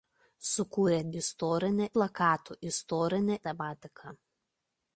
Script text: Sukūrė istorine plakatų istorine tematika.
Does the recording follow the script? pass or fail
pass